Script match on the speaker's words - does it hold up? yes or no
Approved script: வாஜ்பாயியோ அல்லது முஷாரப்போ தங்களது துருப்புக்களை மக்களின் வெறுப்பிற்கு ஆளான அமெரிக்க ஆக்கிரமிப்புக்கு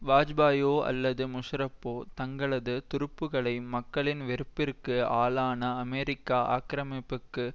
yes